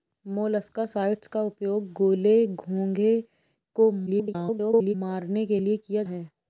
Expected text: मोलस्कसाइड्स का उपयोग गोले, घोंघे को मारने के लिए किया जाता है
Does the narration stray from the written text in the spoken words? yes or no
yes